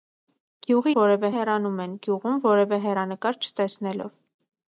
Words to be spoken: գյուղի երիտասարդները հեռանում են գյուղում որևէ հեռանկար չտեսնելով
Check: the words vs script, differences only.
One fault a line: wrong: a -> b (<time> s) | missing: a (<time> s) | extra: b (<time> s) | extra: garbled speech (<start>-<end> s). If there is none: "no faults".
wrong: երիտասարդները -> որևէ (1.0 s)